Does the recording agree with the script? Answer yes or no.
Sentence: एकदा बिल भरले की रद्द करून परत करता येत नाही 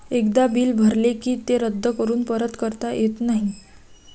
no